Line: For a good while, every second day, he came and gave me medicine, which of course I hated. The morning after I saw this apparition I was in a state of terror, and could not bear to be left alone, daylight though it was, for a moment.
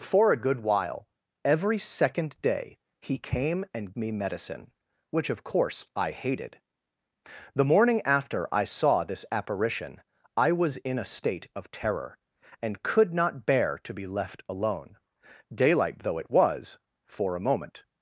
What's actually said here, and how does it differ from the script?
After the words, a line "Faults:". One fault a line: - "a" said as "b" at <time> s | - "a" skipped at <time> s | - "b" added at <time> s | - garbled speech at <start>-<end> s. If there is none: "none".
For a good while, every second day, he came and me medicine, which of course I hated. The morning after I saw this apparition I was in a state of terror, and could not bear to be left alone, daylight though it was, for a moment.
Faults:
- "gave" skipped at 3.9 s